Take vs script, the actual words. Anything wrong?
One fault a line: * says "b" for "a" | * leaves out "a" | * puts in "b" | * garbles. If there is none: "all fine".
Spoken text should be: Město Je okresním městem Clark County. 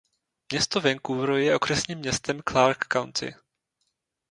* puts in "Vancouver"